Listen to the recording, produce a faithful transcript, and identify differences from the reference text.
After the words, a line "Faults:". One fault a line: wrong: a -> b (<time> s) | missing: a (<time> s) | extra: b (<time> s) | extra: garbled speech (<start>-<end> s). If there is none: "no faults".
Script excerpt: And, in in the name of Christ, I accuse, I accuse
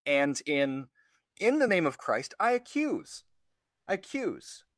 And, in in the name of Christ, I accuse, I accuse
Faults:
no faults